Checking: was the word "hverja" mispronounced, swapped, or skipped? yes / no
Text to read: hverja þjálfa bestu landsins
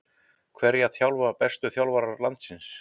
no